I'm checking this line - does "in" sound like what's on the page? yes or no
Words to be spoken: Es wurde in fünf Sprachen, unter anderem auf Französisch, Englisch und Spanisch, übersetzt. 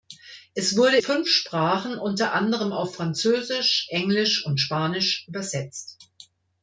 no